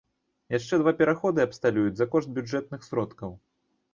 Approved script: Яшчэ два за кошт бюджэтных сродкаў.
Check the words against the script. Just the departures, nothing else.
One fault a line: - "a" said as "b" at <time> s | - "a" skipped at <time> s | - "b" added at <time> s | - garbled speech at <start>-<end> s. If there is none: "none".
- "пераходы абсталююць" added at 1.0 s